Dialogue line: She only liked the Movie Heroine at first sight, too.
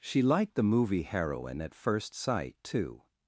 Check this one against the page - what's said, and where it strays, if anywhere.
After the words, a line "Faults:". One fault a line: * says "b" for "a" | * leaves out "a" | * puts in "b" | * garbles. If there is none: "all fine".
She liked the Movie Heroine at first sight, too.
Faults:
* leaves out "only"